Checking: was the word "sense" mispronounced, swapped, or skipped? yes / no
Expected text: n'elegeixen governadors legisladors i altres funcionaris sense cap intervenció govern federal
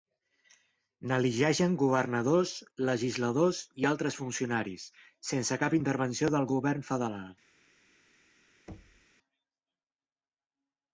no